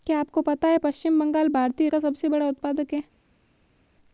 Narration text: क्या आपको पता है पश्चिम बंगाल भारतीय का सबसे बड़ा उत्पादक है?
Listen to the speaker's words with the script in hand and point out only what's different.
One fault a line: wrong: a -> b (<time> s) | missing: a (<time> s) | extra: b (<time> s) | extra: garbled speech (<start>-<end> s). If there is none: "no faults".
no faults